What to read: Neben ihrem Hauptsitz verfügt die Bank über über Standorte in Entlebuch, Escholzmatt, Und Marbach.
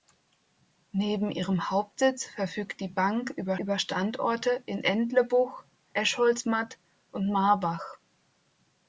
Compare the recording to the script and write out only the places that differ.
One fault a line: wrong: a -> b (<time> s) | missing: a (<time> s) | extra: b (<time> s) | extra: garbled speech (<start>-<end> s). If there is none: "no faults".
no faults